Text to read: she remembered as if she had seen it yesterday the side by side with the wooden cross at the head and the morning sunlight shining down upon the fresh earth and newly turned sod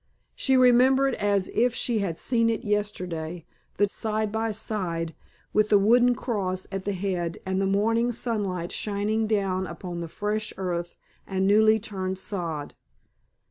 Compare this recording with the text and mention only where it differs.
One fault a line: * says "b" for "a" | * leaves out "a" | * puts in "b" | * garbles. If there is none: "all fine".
all fine